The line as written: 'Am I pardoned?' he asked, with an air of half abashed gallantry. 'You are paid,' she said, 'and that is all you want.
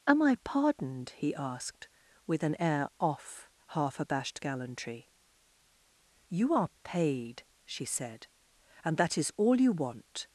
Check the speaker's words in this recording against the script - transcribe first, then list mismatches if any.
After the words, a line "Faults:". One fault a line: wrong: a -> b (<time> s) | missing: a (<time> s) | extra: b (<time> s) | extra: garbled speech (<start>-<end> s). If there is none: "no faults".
'Am I pardoned?' he asked, with an air off half abashed gallantry. 'You are paid,' she said, 'and that is all you want.
Faults:
wrong: of -> off (3.0 s)